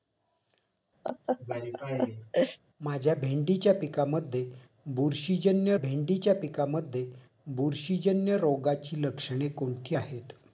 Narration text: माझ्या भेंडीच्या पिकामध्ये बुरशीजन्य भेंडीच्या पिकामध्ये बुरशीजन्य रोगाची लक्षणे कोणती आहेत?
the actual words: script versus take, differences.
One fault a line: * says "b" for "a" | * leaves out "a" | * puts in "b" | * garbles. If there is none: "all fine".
all fine